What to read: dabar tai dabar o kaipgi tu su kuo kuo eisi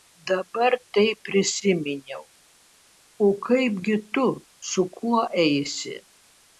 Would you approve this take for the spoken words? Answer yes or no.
no